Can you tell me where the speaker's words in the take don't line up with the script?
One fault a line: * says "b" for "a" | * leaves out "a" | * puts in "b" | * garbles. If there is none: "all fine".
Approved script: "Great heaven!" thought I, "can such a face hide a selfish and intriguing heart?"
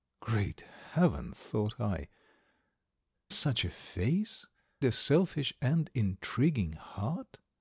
* leaves out "can"
* leaves out "hide"